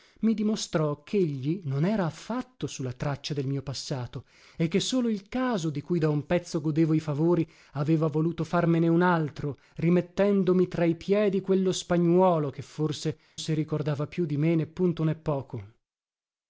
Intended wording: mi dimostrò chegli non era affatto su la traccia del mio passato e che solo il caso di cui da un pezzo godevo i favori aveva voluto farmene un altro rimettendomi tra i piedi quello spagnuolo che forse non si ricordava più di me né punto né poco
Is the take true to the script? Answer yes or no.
no